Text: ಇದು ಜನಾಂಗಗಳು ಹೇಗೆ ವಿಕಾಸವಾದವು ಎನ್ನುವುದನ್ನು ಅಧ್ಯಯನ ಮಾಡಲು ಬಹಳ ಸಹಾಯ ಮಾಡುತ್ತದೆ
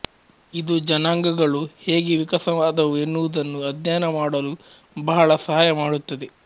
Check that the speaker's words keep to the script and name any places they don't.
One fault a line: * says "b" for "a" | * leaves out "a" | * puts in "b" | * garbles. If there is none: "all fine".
all fine